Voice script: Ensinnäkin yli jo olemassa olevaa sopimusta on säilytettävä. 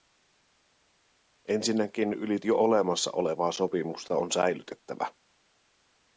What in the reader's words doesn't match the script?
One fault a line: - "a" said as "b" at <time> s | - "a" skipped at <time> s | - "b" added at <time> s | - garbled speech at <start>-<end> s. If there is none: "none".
none